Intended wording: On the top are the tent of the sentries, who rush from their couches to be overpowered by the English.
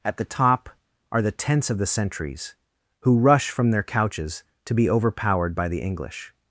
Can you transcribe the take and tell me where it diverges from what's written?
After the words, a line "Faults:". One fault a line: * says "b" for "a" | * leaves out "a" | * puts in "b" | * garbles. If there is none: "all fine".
At the top are the tents of the sentries, who rush from their couches to be overpowered by the English.
Faults:
* says "At" for "On"
* says "tents" for "tent"